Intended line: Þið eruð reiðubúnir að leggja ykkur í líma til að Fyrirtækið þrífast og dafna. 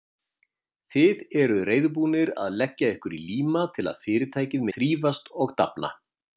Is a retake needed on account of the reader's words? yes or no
no